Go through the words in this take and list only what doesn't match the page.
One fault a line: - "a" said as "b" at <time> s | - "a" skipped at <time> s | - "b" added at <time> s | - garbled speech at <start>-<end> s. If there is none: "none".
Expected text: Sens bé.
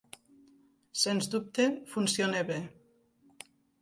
- "dubte funciona" added at 1.4 s